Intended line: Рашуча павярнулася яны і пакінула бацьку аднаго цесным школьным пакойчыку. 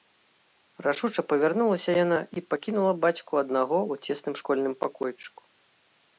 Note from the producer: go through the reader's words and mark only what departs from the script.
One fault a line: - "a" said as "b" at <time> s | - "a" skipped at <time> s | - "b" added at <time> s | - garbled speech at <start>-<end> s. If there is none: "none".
- "яны" said as "яна" at 2.0 s
- "ў" added at 3.9 s